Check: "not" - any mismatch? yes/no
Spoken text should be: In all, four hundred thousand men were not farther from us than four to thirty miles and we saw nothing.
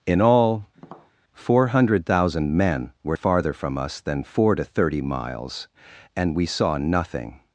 yes